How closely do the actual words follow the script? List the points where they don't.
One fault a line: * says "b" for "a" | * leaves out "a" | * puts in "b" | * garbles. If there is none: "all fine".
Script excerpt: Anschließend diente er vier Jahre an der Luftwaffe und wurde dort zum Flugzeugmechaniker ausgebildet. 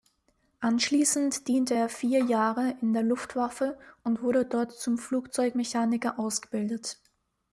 * says "in" for "an"